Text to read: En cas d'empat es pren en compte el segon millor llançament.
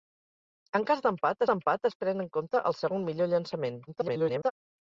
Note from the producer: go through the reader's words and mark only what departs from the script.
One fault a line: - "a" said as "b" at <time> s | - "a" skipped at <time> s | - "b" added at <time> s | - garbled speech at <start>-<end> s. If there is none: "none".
- "d'empat" added at 1.5 s
- garbled speech at 3.9-4.5 s